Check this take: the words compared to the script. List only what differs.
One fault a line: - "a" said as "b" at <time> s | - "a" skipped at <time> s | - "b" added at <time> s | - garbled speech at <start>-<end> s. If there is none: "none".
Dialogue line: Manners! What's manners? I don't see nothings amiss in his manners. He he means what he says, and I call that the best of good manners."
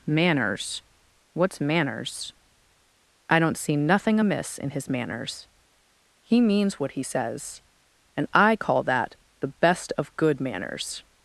- "nothings" said as "nothing" at 3.8 s
- "he" skipped at 6.4 s